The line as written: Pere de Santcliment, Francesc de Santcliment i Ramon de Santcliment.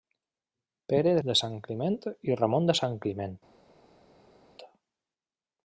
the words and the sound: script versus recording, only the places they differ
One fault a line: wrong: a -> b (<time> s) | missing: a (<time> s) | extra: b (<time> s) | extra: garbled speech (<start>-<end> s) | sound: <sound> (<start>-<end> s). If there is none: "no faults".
missing: Santcliment Francesc (1.2 s)